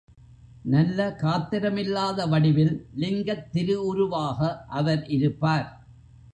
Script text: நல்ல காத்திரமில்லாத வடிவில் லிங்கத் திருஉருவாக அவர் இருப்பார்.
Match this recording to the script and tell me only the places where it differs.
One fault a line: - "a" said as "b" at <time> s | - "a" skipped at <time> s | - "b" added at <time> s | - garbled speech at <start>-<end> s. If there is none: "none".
none